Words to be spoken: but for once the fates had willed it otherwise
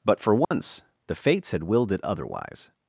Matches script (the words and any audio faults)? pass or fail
fail